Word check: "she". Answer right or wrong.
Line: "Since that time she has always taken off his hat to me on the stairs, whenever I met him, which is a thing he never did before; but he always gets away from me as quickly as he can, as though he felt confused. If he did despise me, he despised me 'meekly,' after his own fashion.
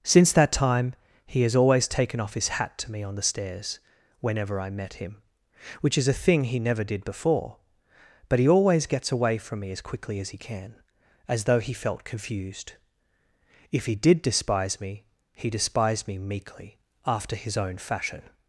wrong